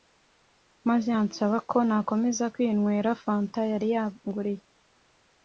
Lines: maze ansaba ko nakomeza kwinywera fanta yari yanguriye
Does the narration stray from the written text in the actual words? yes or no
no